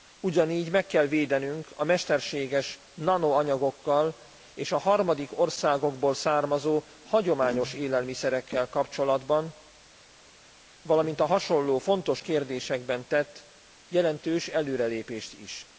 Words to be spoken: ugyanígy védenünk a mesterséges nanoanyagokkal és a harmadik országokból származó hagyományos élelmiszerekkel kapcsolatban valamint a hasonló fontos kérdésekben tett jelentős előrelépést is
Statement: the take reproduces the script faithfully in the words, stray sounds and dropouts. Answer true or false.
false